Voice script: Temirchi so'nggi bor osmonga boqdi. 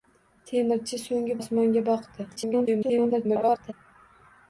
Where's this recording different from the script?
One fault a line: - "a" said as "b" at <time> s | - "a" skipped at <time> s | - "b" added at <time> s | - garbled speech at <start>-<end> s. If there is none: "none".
- "bor" skipped at 1.4 s
- garbled speech at 2.3-3.7 s